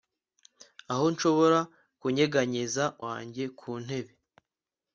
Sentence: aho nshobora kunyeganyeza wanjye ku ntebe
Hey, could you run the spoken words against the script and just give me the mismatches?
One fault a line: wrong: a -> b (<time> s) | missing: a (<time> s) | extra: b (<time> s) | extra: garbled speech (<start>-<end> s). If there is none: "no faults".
no faults